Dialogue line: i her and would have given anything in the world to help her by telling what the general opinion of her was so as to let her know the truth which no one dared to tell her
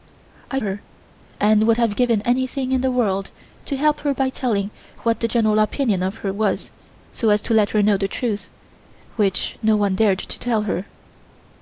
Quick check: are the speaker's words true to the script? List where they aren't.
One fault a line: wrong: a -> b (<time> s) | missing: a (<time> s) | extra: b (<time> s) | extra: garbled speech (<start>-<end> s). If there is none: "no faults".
no faults